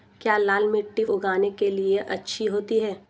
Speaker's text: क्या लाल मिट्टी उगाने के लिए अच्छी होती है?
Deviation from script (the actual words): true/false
false